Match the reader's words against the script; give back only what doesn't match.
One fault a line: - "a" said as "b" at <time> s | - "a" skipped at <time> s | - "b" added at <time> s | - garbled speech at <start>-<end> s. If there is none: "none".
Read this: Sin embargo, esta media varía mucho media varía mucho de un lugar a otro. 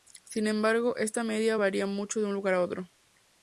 - "media varía mucho" skipped at 2.2 s